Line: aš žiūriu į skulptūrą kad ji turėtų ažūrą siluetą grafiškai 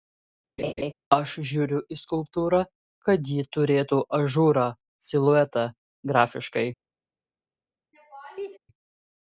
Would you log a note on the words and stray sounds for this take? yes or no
yes